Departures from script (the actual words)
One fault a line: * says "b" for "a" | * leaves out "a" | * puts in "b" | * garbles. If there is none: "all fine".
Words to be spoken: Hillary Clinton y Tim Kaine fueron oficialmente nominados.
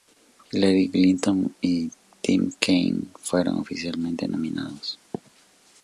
all fine